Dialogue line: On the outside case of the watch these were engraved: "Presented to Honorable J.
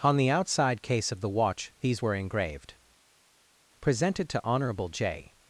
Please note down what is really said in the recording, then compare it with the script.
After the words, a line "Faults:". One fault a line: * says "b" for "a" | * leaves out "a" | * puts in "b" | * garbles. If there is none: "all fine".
On the outside case of the watch these were engraved: "Presented to Honorable J.
Faults:
all fine